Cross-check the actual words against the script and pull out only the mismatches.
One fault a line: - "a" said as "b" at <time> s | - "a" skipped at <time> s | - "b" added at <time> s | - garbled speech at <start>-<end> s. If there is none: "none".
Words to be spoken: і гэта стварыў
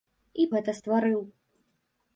none